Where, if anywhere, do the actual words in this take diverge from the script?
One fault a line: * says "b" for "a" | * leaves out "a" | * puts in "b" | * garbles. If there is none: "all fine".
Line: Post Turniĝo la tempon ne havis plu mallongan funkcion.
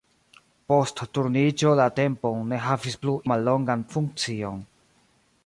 all fine